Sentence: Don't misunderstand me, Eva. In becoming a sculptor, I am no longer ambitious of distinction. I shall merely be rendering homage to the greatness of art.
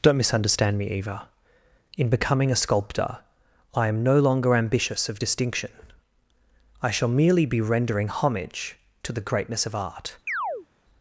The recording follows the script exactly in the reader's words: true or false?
true